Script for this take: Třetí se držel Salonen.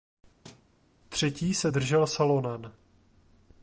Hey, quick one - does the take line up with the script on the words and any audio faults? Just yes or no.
no